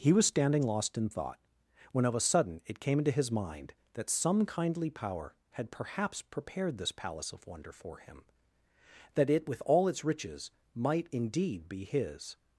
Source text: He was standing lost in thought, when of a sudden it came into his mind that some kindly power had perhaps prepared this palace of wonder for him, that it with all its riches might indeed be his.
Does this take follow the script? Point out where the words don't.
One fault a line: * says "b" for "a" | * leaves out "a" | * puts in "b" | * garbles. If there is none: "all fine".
all fine